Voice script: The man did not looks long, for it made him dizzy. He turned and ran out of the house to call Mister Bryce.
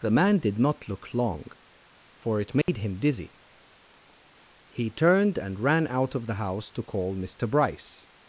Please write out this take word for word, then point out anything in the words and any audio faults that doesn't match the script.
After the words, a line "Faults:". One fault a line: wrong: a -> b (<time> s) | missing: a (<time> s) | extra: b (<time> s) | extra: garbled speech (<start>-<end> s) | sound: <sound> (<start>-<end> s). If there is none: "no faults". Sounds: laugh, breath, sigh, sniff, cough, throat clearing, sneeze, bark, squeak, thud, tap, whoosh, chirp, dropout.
The man did not look long, for it made him dizzy. He turned and ran out of the house to call Mister Bryce.
Faults:
wrong: looks -> look (0.9 s)
sound: dropout (2.6-2.7 s)